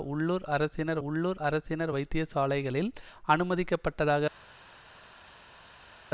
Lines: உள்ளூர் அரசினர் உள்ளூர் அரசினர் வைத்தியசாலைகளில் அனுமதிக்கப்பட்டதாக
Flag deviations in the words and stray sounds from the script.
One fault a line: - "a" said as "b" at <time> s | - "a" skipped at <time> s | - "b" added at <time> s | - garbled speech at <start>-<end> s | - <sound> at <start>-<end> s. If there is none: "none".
none